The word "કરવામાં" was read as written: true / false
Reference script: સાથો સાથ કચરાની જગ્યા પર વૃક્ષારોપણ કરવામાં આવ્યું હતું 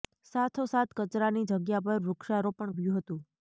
false